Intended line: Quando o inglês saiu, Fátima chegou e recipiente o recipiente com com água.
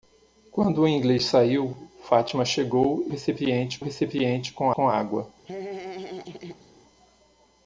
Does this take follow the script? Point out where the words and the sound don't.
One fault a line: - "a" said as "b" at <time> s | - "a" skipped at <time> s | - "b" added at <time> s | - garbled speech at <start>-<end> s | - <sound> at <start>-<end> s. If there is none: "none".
- laugh at 5.5-6.7 s